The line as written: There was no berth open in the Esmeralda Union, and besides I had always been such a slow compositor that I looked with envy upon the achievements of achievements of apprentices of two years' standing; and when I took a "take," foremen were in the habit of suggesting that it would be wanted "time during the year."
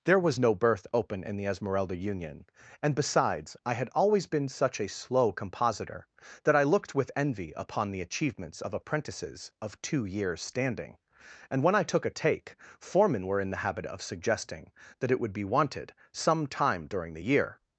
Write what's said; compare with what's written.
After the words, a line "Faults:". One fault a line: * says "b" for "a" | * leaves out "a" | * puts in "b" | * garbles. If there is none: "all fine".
There was no berth open in the Esmeralda Union, and besides I had always been such a slow compositor that I looked with envy upon the achievements of apprentices of two years' standing; and when I took a "take," foremen were in the habit of suggesting that it would be wanted "some time during the year."
Faults:
* leaves out "achievements of"
* puts in "some"